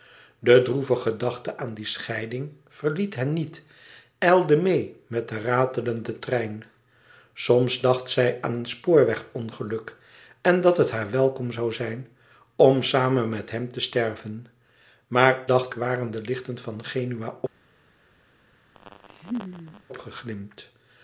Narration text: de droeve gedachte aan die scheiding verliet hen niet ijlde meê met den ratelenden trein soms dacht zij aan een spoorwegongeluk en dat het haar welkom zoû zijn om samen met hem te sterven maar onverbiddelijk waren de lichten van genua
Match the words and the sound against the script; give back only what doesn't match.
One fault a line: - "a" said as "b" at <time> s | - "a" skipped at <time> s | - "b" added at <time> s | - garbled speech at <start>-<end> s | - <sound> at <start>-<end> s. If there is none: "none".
- "onverbiddelijk" said as "dacht" at 15.4 s
- laugh at 18.8-19.8 s